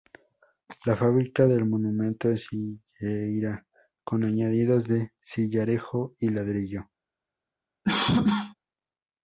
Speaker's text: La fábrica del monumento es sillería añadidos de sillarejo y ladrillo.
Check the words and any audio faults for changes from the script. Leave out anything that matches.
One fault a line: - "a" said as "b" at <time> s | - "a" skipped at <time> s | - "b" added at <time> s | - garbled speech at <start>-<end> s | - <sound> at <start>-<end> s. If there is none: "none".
- "con" added at 4.0 s
- cough at 7.8-8.5 s